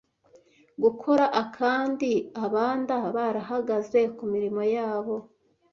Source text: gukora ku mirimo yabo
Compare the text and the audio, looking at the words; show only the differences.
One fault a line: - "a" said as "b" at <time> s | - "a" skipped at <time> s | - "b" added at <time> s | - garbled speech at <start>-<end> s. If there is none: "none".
- "akandi abanda barahagaze" added at 1.4 s